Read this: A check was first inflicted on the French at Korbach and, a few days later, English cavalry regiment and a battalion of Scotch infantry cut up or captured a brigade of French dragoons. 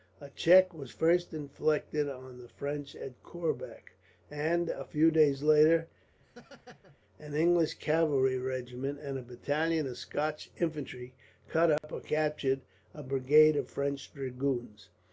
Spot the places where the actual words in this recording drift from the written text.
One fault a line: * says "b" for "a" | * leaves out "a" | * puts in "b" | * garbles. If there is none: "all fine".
* puts in "an"